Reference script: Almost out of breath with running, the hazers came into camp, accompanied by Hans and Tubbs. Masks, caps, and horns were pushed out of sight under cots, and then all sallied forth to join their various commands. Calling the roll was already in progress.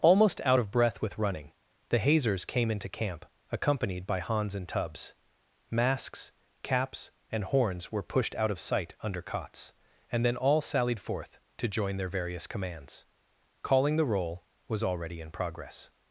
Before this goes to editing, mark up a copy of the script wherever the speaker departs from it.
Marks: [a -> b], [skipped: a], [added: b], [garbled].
Almost out of breath with running, the hazers came into camp, accompanied by Hans and Tubbs. Masks, caps, and horns were pushed out of sight under cots, and then all sallied forth to join their various commands. Calling the roll was already in progress.